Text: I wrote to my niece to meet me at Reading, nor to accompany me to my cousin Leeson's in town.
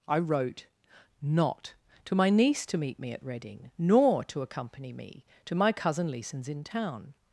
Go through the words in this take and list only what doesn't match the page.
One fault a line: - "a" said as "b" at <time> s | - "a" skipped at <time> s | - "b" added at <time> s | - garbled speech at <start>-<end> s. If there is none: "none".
- "not" added at 1.2 s